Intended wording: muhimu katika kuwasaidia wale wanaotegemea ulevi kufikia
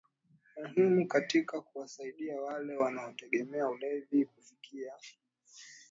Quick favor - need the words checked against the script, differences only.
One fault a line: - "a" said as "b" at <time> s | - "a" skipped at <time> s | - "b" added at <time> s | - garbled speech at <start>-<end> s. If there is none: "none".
none